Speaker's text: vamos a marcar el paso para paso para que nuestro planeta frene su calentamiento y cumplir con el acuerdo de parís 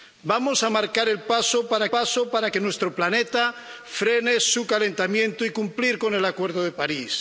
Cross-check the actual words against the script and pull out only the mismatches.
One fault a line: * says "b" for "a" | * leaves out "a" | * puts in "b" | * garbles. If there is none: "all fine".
all fine